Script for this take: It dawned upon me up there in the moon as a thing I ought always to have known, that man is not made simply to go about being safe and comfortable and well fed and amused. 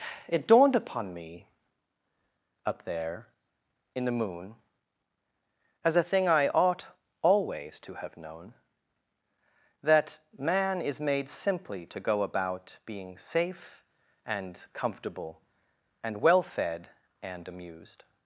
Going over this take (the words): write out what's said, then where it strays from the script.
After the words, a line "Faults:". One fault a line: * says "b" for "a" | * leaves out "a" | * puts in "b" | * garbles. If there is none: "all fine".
It dawned upon me up there in the moon as a thing I ought always to have known, that man is made simply to go about being safe and comfortable and well fed and amused.
Faults:
* leaves out "not"